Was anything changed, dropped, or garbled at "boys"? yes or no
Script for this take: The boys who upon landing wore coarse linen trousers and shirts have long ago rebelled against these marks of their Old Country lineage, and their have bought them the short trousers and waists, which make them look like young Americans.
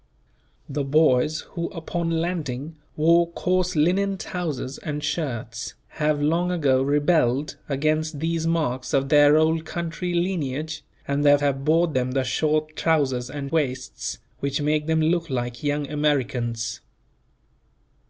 no